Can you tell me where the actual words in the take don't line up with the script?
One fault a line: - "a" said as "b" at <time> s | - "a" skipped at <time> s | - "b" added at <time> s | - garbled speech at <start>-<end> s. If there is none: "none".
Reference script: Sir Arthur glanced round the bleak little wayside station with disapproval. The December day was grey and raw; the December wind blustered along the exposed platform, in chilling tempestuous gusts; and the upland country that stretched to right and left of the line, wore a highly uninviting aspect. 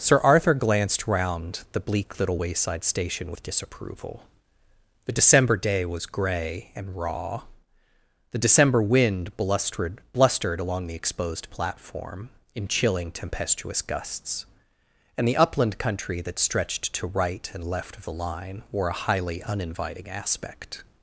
- "blustered" added at 10.1 s